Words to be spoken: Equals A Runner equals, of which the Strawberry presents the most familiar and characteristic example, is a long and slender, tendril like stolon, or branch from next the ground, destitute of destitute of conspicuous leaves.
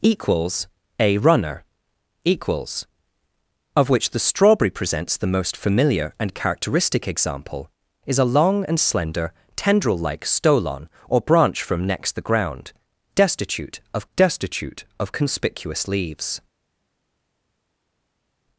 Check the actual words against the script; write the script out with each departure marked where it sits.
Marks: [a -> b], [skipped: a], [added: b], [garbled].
Equals A Runner equals, of which the Strawberry presents the most familiar and characteristic example, is a long and slender, tendril like stolon, or branch from next the ground, destitute of destitute of conspicuous leaves.